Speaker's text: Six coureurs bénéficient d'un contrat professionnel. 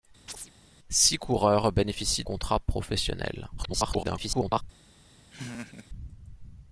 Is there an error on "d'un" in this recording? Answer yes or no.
yes